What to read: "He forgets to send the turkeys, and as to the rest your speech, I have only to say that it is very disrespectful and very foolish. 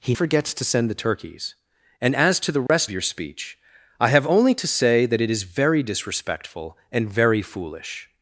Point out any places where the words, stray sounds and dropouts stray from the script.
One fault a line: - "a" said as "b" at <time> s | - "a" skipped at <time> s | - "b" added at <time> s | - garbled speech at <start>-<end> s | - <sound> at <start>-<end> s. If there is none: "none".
- dropout at 2.7-2.7 s